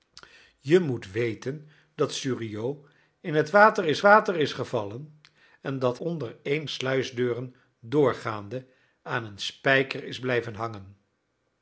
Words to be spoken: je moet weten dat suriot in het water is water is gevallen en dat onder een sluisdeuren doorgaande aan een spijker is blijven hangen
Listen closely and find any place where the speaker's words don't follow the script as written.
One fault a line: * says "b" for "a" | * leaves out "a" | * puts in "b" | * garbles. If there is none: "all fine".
all fine